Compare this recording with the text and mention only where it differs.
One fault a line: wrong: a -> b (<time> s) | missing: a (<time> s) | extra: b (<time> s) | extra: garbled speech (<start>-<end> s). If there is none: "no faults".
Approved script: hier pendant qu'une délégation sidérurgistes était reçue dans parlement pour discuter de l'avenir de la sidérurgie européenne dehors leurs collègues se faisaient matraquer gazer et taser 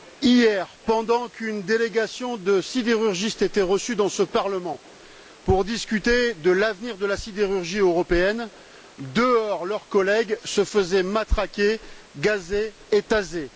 extra: de (2.4 s)
extra: ce (4.1 s)